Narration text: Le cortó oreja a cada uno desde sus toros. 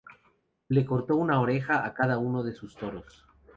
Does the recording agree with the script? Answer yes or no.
no